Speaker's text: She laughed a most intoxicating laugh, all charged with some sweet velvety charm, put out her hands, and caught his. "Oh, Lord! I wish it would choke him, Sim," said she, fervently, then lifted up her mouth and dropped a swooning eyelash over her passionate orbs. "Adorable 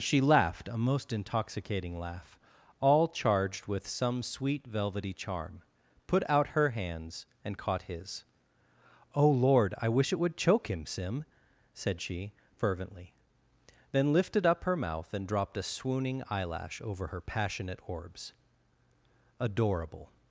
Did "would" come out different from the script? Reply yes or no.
no